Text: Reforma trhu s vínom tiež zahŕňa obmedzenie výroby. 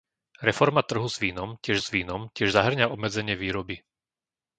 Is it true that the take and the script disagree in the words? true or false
true